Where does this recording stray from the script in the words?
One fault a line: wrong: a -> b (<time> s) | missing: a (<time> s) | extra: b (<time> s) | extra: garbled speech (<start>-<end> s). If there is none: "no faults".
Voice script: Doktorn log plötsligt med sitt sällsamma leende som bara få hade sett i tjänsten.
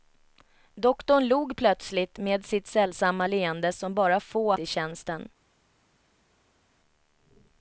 missing: hade sett (4.5 s)